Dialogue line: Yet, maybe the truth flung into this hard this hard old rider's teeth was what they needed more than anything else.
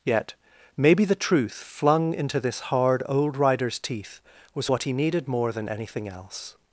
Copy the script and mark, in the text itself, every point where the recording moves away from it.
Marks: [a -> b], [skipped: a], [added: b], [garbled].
Yet, maybe the truth flung into this hard [skipped: this hard] old rider's teeth was what [they -> he] needed more than anything else.